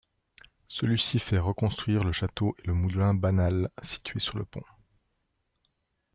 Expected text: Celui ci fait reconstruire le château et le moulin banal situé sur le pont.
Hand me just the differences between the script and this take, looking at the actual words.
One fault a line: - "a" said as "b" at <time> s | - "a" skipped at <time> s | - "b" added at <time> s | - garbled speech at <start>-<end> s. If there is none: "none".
none